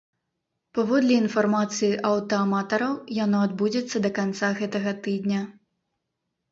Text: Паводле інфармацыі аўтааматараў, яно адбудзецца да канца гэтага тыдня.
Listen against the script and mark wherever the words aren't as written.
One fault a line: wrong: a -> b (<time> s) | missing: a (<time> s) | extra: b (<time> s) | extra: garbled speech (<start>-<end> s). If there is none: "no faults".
no faults